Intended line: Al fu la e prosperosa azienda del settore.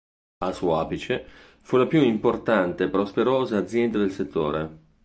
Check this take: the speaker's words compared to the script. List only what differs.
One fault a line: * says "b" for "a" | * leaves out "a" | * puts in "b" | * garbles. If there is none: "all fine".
* puts in "suo apice"
* puts in "più importante"